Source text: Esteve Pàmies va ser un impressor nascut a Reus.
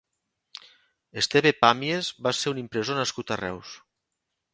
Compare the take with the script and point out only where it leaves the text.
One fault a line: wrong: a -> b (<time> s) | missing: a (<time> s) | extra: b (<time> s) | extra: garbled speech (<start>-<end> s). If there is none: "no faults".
no faults